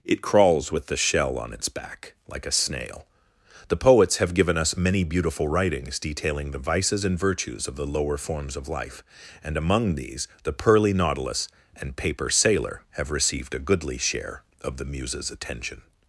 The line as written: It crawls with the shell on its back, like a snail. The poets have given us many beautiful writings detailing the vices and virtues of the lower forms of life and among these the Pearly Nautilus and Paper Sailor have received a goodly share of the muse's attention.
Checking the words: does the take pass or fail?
pass